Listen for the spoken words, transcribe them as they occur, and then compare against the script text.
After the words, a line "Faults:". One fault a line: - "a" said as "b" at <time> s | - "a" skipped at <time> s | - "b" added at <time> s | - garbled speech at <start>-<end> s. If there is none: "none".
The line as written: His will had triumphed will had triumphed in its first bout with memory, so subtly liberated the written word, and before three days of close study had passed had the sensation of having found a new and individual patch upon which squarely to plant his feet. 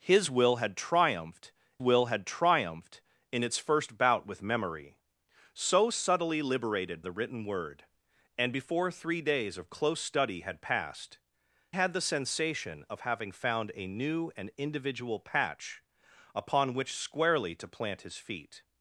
His will had triumphed will had triumphed in its first bout with memory, so subtly liberated the written word, and before three days of close study had passed had the sensation of having found a new and individual patch upon which squarely to plant his feet.
Faults:
none